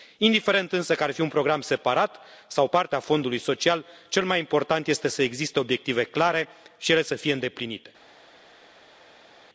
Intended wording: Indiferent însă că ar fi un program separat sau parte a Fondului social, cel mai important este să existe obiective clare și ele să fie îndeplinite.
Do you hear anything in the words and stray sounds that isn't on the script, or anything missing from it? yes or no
no